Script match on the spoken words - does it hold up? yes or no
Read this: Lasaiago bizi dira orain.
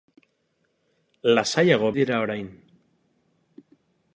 no